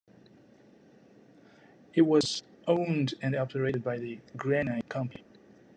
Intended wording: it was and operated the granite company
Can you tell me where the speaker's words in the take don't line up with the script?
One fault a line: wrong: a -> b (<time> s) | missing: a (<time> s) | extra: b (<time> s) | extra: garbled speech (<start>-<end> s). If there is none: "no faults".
extra: owned (2.7 s)
extra: by (3.8 s)